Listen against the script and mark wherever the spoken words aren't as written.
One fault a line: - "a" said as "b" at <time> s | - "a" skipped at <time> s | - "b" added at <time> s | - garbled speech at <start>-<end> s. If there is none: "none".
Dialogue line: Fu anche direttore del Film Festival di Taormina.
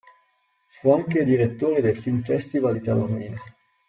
none